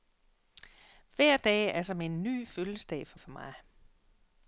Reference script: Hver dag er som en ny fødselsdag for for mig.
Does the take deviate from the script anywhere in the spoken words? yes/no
no